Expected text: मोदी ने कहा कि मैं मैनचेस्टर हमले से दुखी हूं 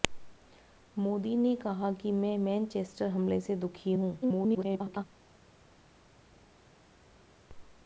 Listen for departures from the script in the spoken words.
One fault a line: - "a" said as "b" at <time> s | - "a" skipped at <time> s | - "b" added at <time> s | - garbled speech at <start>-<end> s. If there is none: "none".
- garbled speech at 4.2-5.0 s